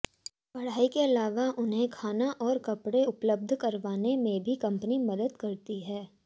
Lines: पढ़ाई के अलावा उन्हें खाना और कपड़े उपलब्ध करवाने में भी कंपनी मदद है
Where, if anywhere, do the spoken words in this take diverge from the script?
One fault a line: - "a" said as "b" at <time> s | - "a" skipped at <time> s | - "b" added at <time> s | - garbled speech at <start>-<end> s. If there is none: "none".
- "करती" added at 5.4 s